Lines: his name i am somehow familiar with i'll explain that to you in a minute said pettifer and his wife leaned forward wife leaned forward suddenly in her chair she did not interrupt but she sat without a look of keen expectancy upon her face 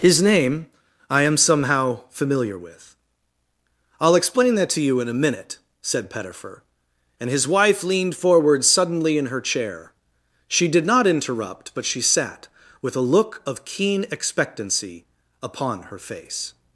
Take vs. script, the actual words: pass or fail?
fail